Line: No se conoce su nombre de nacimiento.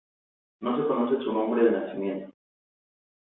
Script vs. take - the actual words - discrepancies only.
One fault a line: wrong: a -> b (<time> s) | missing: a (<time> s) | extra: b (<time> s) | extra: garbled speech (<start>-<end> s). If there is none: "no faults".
no faults